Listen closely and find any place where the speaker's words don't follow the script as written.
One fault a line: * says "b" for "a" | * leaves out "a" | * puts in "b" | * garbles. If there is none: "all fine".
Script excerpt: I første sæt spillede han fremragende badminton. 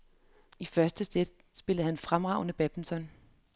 all fine